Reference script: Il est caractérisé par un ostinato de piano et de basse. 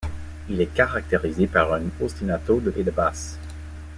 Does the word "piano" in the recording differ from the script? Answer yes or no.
yes